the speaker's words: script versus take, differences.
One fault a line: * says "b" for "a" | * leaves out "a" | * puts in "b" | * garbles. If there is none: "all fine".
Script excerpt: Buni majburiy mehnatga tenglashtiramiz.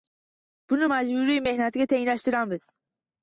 all fine